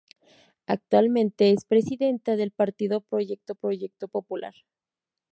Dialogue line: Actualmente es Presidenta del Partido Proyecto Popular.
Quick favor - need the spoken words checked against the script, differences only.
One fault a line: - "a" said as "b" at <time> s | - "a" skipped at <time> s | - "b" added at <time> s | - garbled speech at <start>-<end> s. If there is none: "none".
- "Proyecto" added at 3.5 s